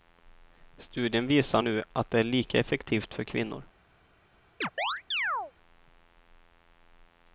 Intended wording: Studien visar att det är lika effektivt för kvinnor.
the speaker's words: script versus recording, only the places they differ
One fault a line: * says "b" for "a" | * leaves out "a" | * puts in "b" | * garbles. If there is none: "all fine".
* puts in "nu"